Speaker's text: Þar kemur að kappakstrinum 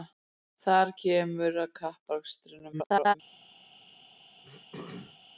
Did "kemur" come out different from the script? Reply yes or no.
no